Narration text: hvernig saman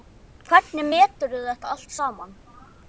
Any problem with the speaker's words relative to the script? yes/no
yes